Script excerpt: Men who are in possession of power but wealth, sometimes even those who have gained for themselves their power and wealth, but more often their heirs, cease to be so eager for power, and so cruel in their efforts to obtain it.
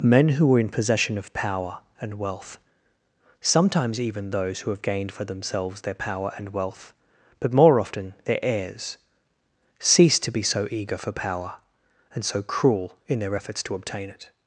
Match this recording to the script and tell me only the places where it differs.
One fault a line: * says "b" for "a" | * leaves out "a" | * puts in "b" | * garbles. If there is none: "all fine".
* says "and" for "but"